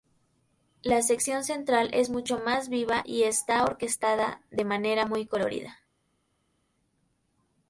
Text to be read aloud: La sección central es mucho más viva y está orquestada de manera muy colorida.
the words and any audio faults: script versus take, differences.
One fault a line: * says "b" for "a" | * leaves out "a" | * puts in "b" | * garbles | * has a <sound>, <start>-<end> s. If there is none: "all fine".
all fine